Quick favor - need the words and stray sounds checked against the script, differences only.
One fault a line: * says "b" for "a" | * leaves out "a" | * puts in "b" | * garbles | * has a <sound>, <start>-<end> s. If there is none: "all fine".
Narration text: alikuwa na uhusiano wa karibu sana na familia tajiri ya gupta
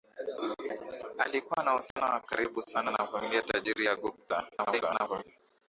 * has a dropout, 1.9-2.0 s
* garbles